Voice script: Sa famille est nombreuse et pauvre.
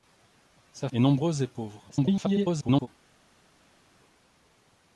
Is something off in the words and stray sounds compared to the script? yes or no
yes